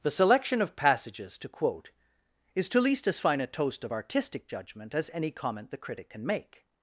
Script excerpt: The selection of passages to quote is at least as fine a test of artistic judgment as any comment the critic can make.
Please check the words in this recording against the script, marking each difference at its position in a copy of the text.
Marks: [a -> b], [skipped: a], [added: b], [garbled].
The selection of passages to quote is [at -> to] least as fine a [test -> toast] of artistic judgment as any comment the critic can make.